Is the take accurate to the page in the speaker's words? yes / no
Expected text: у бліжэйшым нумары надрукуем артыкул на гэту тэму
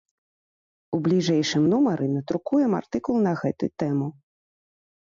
yes